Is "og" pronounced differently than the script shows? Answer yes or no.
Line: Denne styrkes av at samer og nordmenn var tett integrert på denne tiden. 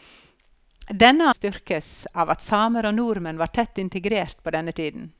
no